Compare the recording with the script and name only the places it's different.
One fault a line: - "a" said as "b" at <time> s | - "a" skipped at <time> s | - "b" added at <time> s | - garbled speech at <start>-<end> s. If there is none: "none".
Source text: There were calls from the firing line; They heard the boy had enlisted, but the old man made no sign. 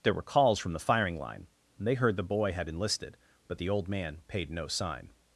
- "made" said as "paid" at 4.3 s